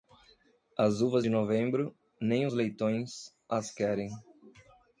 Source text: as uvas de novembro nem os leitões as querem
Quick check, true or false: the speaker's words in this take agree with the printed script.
true